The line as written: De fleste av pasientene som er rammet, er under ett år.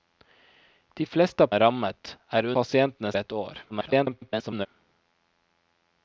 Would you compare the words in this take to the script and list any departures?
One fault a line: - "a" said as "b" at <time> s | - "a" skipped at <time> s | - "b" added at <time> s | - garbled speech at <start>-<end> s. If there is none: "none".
- "pasientene som" skipped at 1.5 s
- "under" said as "pasientene" at 2.6 s
- garbled speech at 3.7-4.7 s